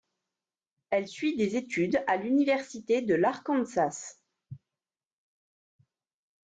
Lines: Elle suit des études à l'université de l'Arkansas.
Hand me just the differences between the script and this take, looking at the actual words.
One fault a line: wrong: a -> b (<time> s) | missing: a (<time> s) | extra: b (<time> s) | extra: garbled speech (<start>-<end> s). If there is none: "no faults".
no faults